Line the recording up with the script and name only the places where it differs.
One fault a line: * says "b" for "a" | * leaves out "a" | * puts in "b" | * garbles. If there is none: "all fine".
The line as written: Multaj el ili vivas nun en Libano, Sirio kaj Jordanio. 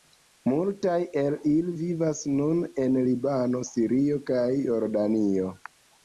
all fine